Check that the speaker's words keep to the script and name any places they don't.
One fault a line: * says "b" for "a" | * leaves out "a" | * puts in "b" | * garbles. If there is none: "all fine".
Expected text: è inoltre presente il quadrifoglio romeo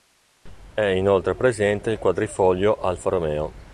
* puts in "alfa"